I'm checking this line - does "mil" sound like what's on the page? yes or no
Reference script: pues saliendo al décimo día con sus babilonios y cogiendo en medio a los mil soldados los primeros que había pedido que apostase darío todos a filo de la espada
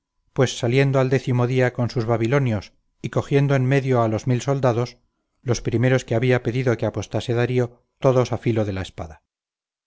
yes